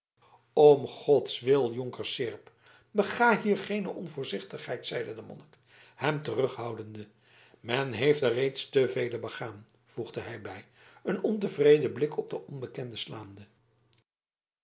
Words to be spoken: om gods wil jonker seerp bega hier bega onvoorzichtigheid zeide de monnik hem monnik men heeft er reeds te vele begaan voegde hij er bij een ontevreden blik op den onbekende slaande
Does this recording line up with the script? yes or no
no